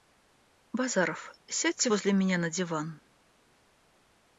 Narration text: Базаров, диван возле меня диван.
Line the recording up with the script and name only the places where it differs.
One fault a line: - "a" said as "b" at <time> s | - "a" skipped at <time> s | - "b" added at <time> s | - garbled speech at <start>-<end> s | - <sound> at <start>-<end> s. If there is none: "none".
- "диван" said as "сядьте" at 1.5 s
- "на" added at 2.4 s